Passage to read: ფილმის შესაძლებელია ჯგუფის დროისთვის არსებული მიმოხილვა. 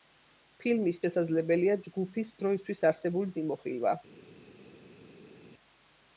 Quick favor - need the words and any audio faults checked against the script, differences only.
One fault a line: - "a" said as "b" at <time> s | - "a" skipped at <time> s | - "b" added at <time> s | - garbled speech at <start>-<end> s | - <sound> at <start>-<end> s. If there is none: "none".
none